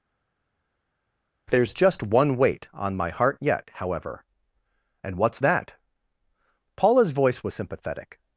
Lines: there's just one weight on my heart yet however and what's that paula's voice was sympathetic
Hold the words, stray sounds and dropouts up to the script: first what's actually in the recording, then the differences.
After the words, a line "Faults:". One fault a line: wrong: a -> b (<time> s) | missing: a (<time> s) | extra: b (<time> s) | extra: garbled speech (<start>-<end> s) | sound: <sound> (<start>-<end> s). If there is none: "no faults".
there's just one weight on my heart yet however and what's that paula's voice was sympathetic
Faults:
no faults